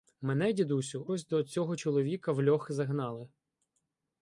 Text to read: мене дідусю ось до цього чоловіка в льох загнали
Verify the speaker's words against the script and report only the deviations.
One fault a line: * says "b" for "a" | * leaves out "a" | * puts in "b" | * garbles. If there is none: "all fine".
all fine